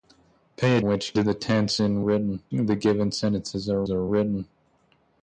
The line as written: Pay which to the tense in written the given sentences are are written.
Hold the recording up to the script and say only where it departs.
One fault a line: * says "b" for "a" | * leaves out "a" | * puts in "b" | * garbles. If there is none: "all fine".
all fine